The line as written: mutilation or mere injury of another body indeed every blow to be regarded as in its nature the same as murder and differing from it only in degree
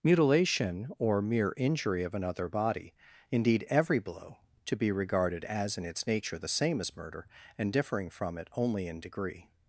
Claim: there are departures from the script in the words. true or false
false